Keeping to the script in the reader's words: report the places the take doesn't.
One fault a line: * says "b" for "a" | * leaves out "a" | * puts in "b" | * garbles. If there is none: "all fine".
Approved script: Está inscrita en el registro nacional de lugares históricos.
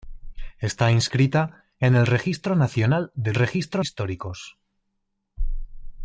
* says "registro" for "lugares"